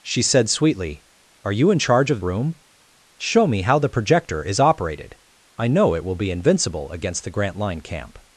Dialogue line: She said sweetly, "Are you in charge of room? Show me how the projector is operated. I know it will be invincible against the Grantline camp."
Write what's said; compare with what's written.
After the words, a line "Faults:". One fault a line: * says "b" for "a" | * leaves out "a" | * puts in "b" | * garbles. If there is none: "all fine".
She said sweetly, "Are you in charge of room? Show me how the projector is operated. I know it will be invincible against the Grantline camp."
Faults:
all fine